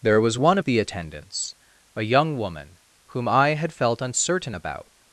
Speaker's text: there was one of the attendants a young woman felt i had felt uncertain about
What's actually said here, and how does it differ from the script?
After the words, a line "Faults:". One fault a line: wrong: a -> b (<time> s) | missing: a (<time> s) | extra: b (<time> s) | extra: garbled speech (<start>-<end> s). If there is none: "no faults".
there was one of the attendants a young woman whom i had felt uncertain about
Faults:
wrong: felt -> whom (3.1 s)